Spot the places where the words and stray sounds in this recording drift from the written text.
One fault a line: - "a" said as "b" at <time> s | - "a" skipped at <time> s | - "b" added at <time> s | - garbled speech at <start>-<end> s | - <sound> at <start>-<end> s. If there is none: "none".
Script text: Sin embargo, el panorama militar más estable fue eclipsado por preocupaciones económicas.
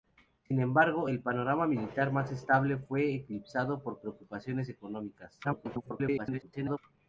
- garbled speech at 5.4-6.8 s